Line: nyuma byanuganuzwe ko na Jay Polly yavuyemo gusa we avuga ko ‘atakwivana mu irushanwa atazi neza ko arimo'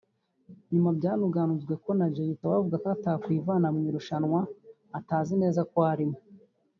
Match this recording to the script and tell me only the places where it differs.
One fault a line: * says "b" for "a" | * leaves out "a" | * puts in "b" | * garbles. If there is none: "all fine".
* leaves out "Polly yavuyemo gusa"